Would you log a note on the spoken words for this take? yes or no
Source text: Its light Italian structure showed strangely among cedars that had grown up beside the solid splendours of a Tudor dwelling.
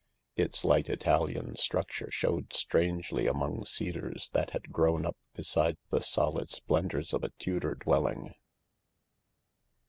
no